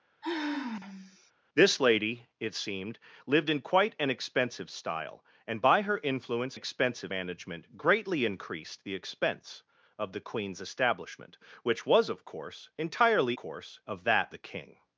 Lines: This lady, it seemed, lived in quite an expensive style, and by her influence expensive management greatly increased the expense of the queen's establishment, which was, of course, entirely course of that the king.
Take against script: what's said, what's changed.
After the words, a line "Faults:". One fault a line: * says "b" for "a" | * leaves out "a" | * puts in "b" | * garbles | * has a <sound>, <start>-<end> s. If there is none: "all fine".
This lady, it seemed, lived in quite an expensive style, and by her influence expensive management greatly increased the expense of the queen's establishment, which was, of course, entirely course of that the king.
Faults:
* has a sigh, 0.2-1.3 s